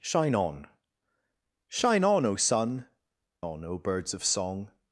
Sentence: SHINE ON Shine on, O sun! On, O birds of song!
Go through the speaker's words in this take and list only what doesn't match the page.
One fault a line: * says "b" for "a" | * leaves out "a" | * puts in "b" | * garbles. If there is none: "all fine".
all fine